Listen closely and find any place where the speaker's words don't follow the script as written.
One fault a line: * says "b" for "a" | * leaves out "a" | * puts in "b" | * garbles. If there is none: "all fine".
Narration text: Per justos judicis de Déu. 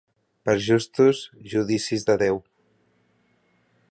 all fine